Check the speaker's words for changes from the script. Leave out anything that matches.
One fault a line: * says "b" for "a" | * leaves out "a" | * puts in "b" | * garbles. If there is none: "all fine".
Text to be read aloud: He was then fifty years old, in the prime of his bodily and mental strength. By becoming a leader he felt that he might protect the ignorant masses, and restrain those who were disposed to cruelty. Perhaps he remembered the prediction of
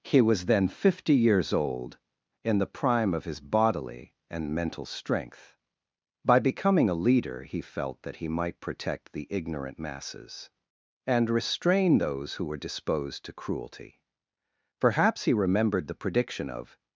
all fine